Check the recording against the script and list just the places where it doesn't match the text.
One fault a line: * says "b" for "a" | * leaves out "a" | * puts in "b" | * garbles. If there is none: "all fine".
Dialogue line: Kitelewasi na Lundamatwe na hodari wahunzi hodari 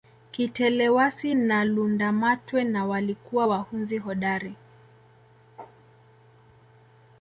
* says "walikuwa" for "hodari"